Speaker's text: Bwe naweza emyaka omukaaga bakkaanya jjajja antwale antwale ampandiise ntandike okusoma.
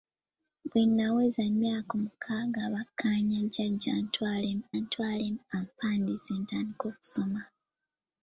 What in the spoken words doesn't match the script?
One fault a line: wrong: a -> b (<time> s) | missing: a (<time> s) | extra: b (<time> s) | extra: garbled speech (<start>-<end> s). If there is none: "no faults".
no faults